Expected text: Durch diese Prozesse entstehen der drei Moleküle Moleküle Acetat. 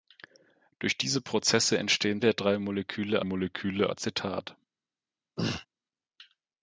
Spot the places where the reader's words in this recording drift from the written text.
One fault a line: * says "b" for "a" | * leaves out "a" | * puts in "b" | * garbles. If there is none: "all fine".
all fine